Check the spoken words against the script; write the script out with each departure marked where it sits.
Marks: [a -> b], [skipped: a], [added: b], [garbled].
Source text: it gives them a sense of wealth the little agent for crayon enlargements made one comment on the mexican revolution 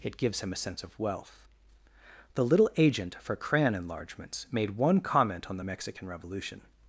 it gives [them -> him] a sense of wealth the little agent for crayon enlargements made one comment on the mexican revolution